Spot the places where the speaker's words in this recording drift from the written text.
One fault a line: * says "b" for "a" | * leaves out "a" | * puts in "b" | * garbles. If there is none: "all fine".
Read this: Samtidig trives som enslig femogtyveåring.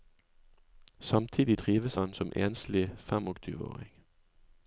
* puts in "han"